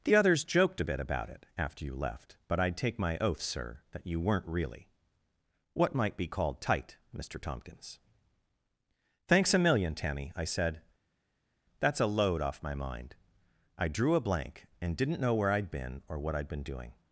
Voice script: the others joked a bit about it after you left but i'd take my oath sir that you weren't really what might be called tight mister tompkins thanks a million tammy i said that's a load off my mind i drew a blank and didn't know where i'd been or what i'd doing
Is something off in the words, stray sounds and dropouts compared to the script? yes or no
yes